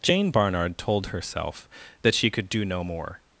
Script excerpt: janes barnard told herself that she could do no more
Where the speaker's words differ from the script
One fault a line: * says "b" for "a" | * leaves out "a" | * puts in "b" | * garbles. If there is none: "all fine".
* says "jane" for "janes"